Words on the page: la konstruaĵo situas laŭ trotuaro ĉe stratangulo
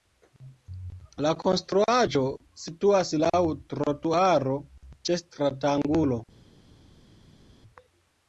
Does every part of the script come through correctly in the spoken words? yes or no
yes